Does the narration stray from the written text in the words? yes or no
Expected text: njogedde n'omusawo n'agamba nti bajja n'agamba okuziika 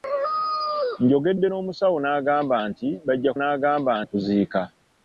no